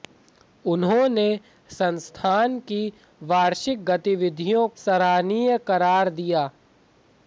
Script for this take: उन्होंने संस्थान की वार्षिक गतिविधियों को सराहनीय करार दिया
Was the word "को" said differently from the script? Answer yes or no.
yes